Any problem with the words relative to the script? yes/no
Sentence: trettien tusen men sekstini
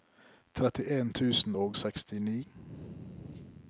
yes